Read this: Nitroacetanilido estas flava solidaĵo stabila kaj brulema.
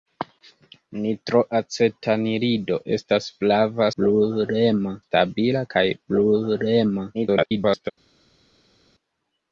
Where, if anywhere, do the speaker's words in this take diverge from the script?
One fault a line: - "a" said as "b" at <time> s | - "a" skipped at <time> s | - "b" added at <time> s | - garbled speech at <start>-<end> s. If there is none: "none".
- "solidaĵo" said as "brulema" at 4.0 s
- garbled speech at 7.1-7.9 s